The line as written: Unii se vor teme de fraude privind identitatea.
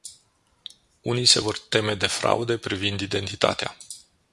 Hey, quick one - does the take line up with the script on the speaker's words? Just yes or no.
yes